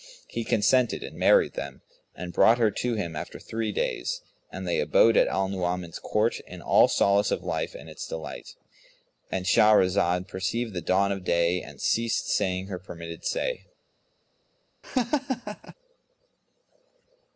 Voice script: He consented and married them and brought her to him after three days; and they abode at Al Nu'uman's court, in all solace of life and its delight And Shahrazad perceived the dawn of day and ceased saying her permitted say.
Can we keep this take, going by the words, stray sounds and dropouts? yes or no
no